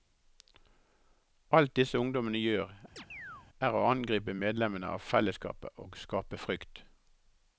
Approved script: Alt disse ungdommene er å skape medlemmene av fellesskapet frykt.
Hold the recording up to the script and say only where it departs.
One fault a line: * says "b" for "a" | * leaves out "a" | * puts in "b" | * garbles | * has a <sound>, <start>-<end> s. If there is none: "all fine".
* puts in "gjør"
* has a chirp, 3.0-3.5 s
* says "angripe" for "skape"
* puts in "og skape"